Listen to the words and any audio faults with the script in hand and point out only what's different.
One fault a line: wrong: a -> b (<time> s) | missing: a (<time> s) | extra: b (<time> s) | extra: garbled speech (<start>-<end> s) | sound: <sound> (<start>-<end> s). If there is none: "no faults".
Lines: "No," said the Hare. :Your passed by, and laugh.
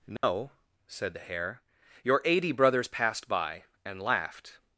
sound: dropout (0.2-0.2 s)
extra: eighty brothers (2.2 s)
wrong: laugh -> laughed (4.0 s)